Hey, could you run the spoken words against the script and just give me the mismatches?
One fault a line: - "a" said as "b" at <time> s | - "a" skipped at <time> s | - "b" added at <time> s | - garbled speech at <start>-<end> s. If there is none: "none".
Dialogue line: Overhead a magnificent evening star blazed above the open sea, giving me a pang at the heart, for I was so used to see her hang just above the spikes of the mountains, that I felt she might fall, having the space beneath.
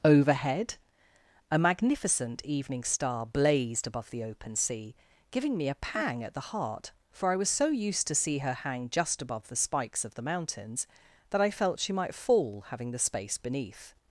none